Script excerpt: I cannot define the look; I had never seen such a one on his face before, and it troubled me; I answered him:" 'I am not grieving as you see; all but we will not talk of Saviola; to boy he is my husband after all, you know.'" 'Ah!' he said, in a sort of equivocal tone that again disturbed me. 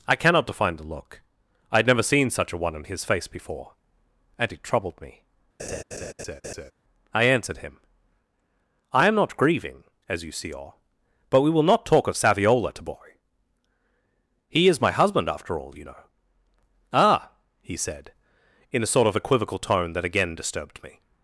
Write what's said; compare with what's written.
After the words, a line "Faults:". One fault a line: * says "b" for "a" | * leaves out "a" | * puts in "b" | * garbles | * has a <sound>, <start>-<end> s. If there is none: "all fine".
I cannot define the look; I had never seen such a one on his face before, and it troubled me; I answered him:" 'I am not grieving as you see; all but we will not talk of Saviola; to boy he is my husband after all, you know.'" 'Ah!' he said, in a sort of equivocal tone that again disturbed me.
Faults:
* has a laugh, 5.6-6.7 s